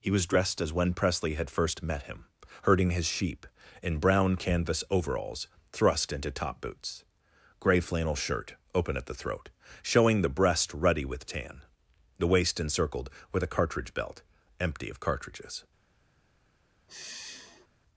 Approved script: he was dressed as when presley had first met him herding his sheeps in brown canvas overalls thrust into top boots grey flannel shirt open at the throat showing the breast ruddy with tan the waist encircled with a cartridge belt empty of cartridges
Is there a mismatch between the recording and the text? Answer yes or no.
yes